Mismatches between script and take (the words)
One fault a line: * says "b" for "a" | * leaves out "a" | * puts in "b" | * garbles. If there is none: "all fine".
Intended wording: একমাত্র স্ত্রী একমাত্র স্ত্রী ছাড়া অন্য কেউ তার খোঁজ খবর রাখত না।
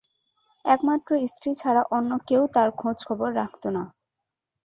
* leaves out "একমাত্র স্ত্রী"